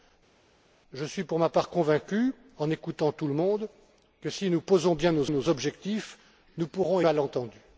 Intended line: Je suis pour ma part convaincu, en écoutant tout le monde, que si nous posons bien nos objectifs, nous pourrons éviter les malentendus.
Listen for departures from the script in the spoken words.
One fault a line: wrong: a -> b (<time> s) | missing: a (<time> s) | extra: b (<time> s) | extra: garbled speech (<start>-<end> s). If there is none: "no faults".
extra: nos (5.3 s)
missing: éviter les (7.0 s)